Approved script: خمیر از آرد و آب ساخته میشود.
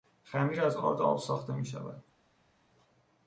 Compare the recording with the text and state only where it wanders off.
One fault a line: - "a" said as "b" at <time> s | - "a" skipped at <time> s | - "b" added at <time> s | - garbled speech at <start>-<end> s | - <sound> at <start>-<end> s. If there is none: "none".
none